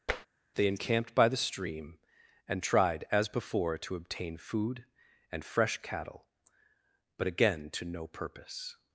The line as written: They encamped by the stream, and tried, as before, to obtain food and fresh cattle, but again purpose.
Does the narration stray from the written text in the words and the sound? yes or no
yes